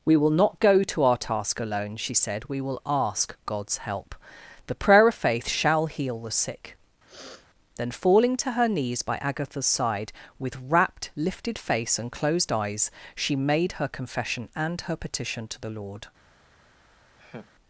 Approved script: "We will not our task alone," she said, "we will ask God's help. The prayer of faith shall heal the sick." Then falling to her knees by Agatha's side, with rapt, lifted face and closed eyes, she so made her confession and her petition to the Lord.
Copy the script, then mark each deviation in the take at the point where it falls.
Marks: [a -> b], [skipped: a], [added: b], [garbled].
"We will not [added: go to] our task alone," she said, "we will ask God's help. The prayer of faith shall heal the sick." Then falling to her knees by Agatha's side, with rapt, lifted face and closed eyes, she [skipped: so] made her confession and her petition to the Lord.